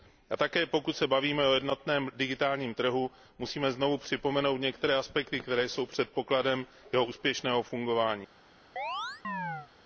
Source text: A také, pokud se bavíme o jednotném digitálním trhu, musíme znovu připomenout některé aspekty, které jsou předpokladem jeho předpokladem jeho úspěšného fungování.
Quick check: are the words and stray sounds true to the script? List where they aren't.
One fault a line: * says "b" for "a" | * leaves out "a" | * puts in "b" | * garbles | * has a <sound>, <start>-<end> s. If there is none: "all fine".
* leaves out "předpokladem jeho"
* has a chirp, 8.8-9.7 s